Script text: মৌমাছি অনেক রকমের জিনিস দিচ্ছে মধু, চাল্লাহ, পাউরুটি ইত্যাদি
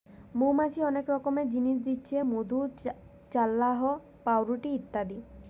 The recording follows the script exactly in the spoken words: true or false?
true